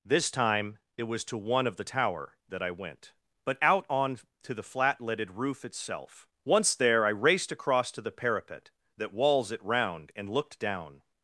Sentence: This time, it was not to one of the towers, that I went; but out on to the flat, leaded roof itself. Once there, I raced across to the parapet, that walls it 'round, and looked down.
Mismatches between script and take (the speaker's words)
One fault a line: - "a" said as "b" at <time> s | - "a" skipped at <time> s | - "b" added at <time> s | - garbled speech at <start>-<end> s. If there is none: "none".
- "not" skipped at 1.2 s
- "towers" said as "tower" at 1.8 s